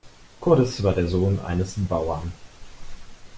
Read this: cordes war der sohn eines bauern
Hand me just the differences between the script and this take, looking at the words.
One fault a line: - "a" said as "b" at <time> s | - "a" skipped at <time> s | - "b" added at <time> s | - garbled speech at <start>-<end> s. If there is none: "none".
none